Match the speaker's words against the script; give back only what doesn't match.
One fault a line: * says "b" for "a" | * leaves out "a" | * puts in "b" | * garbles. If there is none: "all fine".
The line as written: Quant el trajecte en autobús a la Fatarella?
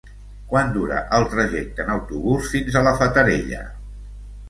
* puts in "dura"
* puts in "fins"